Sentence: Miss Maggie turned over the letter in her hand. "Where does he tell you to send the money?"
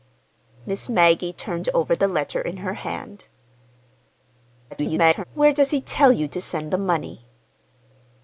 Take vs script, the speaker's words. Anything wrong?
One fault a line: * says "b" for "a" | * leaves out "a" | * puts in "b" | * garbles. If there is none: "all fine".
* garbles